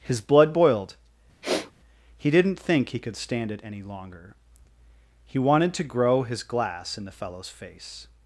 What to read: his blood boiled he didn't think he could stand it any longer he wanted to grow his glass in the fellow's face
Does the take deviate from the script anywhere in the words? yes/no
no